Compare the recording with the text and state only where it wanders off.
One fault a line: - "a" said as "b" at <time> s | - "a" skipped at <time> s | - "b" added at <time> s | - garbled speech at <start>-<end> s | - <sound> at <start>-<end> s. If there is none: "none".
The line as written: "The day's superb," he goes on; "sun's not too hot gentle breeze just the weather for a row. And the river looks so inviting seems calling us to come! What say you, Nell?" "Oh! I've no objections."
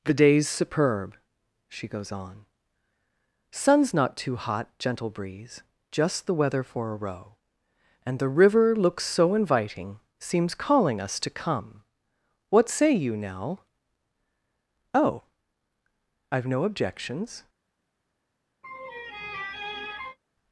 - "he" said as "she" at 1.7 s
- laugh at 18.6-20.2 s